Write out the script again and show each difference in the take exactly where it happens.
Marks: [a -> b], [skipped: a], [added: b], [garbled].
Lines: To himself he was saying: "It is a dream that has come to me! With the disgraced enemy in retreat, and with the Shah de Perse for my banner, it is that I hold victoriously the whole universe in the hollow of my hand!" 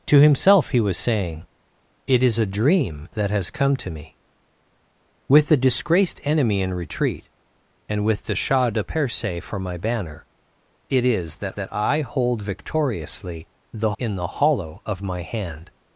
To himself he was saying: "It is a dream that has come to me! With the disgraced enemy in retreat, and with the Shah de Perse for my banner, it is that [added: that] I hold victoriously the [skipped: whole universe] in the hollow of my hand!"